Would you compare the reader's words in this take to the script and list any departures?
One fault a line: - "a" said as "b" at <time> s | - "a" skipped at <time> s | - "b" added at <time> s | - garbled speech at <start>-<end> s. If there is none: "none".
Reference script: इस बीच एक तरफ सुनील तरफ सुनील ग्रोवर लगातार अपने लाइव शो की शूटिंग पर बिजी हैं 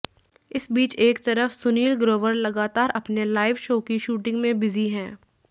- "तरफ सुनील" skipped at 1.9 s
- "पर" said as "में" at 4.4 s